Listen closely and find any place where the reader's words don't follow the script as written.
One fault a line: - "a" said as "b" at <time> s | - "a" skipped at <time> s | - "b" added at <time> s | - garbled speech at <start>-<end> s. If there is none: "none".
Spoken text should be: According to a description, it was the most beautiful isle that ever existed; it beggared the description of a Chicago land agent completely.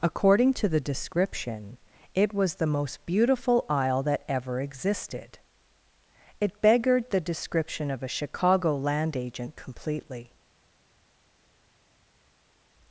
- "a" said as "the" at 0.7 s